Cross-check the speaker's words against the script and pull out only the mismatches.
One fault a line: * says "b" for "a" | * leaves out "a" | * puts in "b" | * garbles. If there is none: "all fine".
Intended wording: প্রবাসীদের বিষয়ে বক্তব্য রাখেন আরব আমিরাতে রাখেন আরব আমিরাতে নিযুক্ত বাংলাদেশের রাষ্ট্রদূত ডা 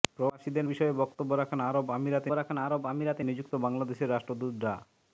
all fine